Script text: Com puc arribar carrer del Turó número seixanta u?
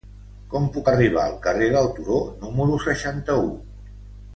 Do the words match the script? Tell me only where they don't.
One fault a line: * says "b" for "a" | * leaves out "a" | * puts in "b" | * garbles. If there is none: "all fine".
* puts in "al"